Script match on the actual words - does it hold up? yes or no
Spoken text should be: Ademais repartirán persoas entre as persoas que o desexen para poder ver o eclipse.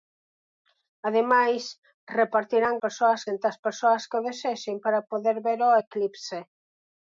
yes